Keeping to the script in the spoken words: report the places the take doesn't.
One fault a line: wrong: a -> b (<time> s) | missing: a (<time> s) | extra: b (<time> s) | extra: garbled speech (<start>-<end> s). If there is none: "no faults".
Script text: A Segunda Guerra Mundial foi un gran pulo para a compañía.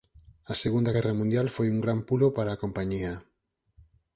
no faults